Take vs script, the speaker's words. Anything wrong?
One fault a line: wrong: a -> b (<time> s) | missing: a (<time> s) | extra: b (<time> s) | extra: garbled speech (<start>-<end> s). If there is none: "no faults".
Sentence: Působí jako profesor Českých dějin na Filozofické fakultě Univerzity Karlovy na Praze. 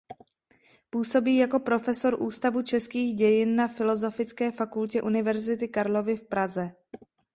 extra: Ústavu (2.2 s)
wrong: na -> v (6.2 s)